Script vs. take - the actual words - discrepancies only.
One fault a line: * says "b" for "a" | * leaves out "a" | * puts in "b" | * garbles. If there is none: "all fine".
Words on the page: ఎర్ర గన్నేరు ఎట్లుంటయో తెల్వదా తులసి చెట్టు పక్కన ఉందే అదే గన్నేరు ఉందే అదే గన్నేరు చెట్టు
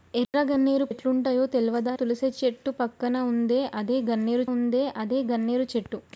all fine